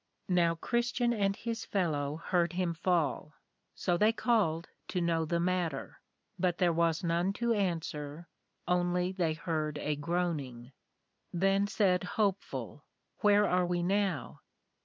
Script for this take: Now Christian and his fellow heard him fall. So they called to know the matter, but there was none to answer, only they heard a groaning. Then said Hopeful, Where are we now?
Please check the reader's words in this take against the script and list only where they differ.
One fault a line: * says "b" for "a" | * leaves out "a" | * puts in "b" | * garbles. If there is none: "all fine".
all fine